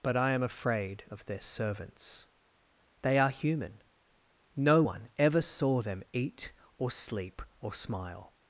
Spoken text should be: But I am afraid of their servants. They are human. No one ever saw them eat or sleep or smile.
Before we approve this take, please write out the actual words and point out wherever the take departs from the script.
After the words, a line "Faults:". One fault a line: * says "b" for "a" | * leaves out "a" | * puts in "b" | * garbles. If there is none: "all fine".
But I am afraid of their servants. They are human. No one ever saw them eat or sleep or smile.
Faults:
all fine